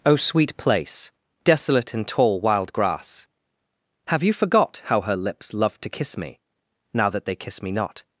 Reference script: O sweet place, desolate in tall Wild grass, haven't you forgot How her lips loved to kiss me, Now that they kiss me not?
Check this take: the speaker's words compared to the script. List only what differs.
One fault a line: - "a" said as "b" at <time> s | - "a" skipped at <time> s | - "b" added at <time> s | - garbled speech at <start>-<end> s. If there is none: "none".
- "haven't" said as "have" at 4.1 s